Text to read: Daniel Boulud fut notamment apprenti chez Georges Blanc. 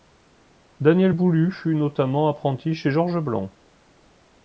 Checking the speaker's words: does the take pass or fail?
pass